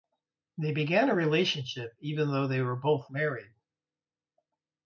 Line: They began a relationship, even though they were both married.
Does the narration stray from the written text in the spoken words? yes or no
no